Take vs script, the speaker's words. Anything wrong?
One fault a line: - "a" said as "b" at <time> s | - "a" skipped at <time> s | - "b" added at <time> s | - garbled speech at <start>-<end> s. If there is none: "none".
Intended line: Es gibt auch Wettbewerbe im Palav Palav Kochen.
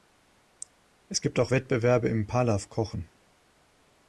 - "Palav" skipped at 2.7 s